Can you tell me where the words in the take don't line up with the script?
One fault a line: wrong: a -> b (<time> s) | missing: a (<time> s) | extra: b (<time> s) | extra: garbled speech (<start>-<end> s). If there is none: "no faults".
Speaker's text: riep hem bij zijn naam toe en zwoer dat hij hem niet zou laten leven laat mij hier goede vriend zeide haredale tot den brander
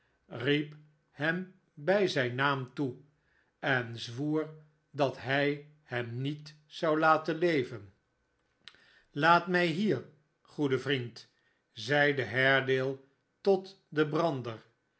no faults